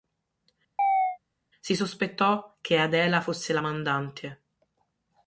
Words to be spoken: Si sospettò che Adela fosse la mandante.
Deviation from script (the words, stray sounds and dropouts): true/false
true